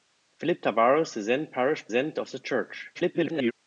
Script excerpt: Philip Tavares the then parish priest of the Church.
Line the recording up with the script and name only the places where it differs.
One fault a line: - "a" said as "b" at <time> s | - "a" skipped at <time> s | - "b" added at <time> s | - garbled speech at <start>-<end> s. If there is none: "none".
- "priest" said as "then" at 1.9 s
- garbled speech at 2.9-3.5 s